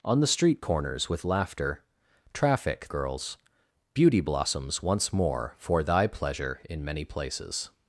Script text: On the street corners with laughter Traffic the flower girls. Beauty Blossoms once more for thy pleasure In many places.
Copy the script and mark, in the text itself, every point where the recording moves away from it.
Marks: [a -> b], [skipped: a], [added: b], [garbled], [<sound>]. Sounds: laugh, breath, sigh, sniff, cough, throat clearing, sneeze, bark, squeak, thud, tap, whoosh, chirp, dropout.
On the street corners with laughter Traffic [skipped: the flower] girls. Beauty Blossoms once more for thy pleasure In many places.